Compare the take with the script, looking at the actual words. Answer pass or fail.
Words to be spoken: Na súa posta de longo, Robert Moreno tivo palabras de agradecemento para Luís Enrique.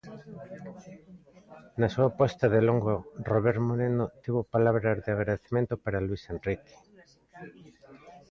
pass